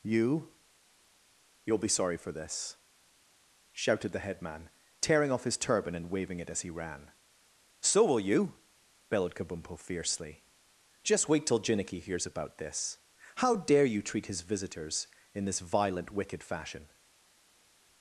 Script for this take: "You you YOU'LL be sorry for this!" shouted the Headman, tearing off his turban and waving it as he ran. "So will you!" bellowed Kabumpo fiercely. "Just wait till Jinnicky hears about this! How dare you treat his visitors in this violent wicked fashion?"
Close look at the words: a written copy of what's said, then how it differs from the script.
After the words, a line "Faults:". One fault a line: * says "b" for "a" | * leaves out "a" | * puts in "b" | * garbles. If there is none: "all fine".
"You YOU'LL be sorry for this!" shouted the Headman, tearing off his turban and waving it as he ran. "So will you!" bellowed Kabumpo fiercely. "Just wait till Jinnicky hears about this! How dare you treat his visitors in this violent wicked fashion?"
Faults:
* leaves out "you"